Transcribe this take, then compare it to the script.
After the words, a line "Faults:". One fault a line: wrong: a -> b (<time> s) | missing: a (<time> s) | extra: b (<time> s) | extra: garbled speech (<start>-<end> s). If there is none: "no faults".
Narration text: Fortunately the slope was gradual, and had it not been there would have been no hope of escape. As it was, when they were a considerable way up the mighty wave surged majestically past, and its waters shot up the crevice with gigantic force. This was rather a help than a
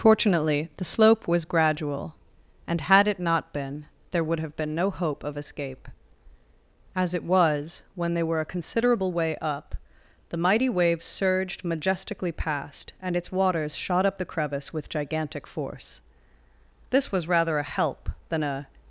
Fortunately the slope was gradual, and had it not been there would have been no hope of escape. As it was, when they were a considerable way up the mighty wave surged majestically past, and its waters shot up the crevice with gigantic force. This was rather a help than a
Faults:
no faults